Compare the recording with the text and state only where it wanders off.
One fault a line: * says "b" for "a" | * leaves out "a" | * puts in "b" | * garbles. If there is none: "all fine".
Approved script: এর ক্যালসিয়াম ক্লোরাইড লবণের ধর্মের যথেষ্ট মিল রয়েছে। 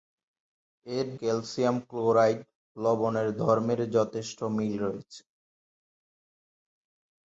all fine